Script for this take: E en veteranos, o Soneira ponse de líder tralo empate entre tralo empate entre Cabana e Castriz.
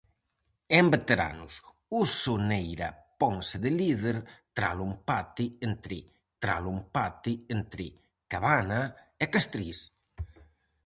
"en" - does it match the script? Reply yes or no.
yes